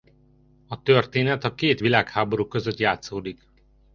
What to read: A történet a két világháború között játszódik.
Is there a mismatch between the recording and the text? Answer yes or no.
no